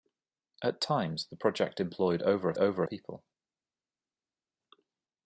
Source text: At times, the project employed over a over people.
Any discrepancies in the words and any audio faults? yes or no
no